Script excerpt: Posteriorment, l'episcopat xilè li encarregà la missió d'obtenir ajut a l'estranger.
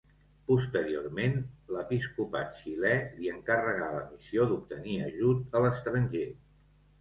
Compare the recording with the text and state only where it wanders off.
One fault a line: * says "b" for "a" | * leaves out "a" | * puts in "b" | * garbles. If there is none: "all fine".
all fine